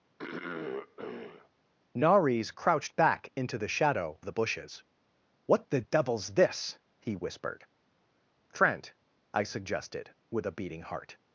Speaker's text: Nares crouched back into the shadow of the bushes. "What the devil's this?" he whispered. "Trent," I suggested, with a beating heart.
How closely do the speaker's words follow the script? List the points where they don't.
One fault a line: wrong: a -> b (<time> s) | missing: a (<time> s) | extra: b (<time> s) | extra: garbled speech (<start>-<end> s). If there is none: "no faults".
missing: of (4.2 s)